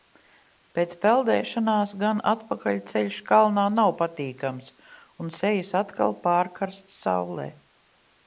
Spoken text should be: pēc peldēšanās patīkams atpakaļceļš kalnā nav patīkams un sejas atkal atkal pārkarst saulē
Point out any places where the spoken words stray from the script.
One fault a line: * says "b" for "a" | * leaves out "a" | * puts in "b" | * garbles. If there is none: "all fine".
* says "gan" for "patīkams"
* leaves out "atkal"